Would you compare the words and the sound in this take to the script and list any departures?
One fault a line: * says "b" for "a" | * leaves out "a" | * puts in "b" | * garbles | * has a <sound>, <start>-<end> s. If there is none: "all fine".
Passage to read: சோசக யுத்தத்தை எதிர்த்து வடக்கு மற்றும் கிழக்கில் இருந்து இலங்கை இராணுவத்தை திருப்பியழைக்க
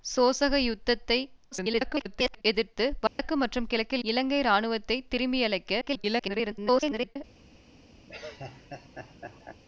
* garbles
* has a dropout, 3.1-3.2 s
* leaves out "இருந்து"
* garbles
* has a laugh, 8.1-9.6 s